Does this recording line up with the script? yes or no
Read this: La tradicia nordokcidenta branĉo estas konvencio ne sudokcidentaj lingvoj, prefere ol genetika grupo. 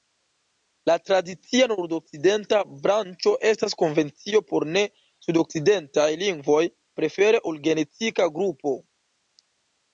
no